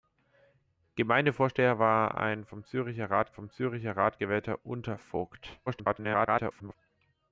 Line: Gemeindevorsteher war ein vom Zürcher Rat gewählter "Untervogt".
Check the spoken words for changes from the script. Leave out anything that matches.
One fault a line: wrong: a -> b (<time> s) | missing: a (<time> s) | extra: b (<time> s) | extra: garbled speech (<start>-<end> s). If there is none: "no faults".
extra: vom Zürcher Rat (3.3 s)
extra: garbled speech (5.7-6.8 s)